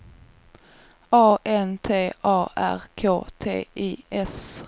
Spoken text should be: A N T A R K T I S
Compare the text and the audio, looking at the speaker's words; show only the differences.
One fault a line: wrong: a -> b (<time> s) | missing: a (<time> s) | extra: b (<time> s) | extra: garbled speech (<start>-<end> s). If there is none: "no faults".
no faults